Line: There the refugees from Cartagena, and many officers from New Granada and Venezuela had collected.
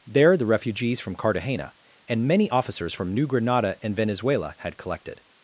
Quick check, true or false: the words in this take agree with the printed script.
true